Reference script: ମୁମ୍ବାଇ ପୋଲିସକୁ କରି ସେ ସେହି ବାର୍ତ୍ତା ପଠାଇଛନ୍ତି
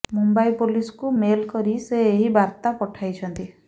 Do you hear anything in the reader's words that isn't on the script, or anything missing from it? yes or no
yes